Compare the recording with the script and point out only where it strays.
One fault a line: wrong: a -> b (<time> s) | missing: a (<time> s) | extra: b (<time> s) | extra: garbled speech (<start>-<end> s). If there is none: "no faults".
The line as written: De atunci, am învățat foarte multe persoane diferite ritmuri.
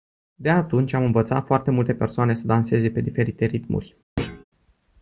extra: să danseze pe (2.3 s)